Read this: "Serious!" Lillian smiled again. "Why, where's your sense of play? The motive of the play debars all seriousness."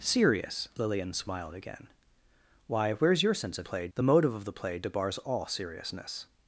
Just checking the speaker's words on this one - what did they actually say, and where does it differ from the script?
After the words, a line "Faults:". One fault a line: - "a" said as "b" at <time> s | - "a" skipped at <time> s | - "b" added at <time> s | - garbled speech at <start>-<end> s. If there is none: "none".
"Serious!" Lillian smiled again. "Why, where's your sense of play? The motive of the play debars all seriousness."
Faults:
none